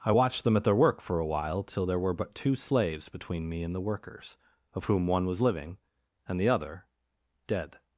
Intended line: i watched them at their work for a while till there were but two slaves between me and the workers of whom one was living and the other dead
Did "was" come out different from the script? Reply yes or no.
no